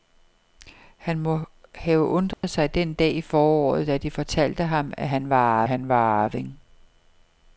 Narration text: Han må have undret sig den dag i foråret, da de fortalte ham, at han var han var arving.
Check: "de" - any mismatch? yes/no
no